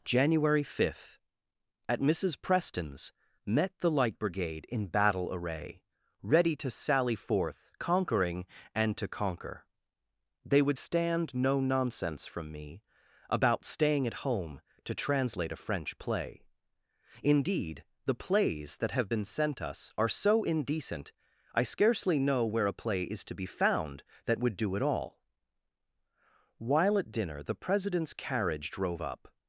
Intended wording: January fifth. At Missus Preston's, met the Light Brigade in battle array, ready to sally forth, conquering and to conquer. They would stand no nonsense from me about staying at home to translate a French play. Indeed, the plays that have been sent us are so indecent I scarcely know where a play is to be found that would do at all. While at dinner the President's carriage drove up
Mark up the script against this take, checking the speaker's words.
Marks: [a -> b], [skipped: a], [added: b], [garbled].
January fifth. At Missus Preston's, met the Light Brigade in battle array, ready to sally forth, conquering and to conquer. They would stand no nonsense from me about staying at home to translate a French play. Indeed, the plays that have been sent us are so indecent I scarcely know where a play is to be found that would do at all. While at dinner the President's carriage drove up